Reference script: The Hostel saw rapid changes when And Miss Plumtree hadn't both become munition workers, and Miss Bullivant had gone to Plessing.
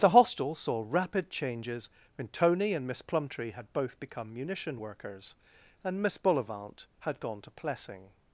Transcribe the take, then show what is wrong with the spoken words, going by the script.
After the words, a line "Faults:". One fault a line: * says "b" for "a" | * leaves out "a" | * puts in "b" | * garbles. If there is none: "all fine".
The Hostel saw rapid changes when Tony and Miss Plumtree had both become munition workers, and Miss Bullivant had gone to Plessing.
Faults:
* puts in "Tony"
* says "had" for "hadn't"